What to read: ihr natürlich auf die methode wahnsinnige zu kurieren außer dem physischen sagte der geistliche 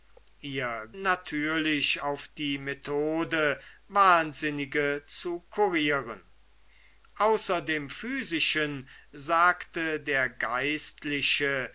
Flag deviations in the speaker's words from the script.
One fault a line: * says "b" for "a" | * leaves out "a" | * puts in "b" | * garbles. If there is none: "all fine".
all fine